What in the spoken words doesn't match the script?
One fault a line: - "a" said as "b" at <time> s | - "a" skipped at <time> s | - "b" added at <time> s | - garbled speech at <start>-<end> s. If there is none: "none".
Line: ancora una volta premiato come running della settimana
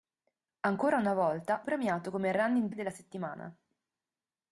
none